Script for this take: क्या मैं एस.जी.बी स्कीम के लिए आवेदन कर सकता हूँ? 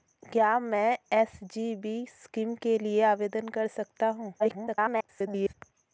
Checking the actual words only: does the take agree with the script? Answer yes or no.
no